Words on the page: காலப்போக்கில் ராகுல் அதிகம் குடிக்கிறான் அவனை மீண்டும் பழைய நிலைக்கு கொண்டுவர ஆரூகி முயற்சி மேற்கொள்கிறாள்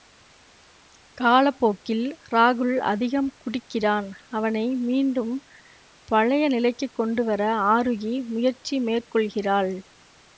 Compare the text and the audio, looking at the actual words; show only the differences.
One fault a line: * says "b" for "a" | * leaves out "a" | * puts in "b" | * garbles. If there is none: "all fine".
all fine